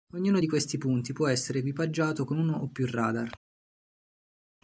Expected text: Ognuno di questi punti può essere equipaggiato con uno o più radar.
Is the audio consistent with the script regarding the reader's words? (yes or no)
yes